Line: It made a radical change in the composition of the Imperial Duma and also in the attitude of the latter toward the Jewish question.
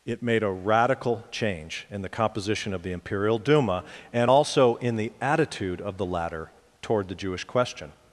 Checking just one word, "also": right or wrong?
right